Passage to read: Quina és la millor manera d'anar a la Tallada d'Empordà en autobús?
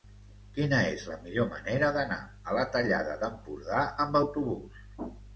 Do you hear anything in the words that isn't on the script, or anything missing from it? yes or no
yes